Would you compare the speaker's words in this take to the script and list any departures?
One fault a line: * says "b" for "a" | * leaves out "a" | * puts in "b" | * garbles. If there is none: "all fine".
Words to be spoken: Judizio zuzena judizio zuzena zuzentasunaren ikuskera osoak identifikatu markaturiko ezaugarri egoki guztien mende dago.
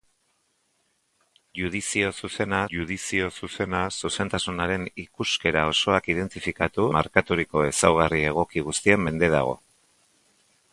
all fine